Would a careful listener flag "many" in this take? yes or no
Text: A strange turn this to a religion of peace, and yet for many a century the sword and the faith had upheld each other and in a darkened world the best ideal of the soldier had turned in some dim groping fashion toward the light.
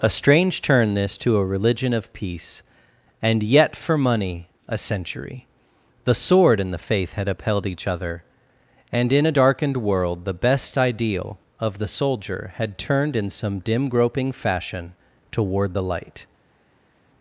yes